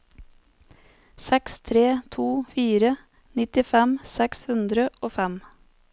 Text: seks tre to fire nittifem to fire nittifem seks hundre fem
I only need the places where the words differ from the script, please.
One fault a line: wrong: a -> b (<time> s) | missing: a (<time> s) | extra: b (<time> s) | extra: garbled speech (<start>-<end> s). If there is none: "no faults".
missing: to fire nittifem (4.0 s)
extra: og (5.0 s)